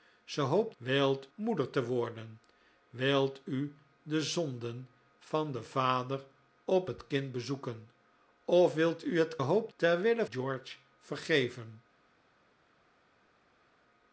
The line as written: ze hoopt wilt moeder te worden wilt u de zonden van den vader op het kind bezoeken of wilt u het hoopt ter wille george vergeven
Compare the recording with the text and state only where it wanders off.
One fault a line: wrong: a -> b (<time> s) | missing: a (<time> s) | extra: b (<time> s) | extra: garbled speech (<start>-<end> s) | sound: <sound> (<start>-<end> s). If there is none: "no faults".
no faults